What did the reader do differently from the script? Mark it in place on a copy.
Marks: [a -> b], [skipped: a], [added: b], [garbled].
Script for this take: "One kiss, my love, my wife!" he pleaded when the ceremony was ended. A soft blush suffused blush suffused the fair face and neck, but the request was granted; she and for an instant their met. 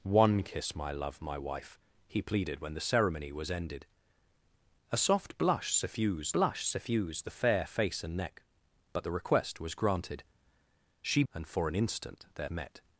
"One kiss, my love, my wife!" he pleaded when the ceremony was ended. A soft blush suffused blush suffused the fair face and neck, but the request was granted; she and for an instant their met.